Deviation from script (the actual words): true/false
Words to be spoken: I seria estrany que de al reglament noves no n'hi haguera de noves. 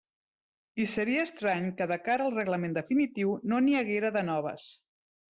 true